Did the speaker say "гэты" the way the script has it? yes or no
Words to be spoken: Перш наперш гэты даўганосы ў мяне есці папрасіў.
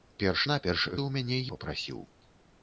no